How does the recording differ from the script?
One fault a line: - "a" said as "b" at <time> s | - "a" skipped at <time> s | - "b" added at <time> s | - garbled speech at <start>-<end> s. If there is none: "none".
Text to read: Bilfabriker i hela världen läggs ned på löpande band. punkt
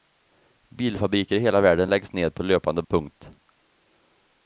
- "band" skipped at 2.8 s